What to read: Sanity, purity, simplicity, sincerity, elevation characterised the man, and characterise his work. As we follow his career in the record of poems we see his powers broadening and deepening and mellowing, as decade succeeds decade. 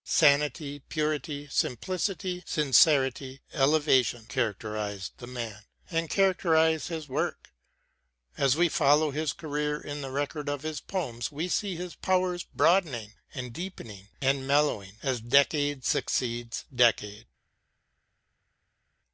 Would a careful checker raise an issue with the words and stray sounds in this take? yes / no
yes